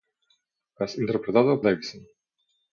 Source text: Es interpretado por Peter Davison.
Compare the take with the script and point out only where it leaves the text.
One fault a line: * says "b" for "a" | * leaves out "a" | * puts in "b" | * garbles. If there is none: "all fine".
* leaves out "por Peter"